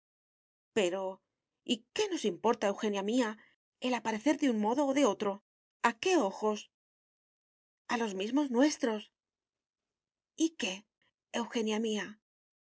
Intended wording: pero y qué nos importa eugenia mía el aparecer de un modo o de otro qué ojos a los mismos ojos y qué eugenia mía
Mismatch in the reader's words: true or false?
true